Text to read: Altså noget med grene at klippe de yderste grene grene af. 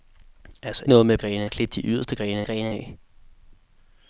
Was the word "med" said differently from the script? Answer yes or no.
no